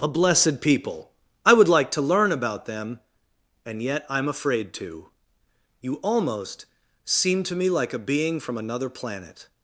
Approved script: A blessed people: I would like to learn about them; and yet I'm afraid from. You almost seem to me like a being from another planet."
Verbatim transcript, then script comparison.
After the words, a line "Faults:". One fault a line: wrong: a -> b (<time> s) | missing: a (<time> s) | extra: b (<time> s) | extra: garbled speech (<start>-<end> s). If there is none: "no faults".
A blessed people: I would like to learn about them; and yet I'm afraid to. You almost seem to me like a being from another planet."
Faults:
wrong: from -> to (4.7 s)